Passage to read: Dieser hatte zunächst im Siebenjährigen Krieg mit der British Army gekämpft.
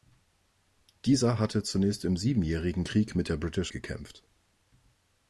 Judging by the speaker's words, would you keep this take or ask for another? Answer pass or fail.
fail